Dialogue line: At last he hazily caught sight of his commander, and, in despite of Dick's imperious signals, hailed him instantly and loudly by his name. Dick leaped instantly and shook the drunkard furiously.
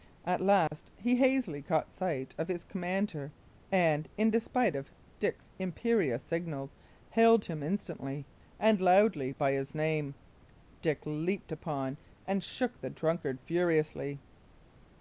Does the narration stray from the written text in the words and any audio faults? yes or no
yes